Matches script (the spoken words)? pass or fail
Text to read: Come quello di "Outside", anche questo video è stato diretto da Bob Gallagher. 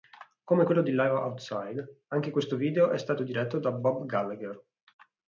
fail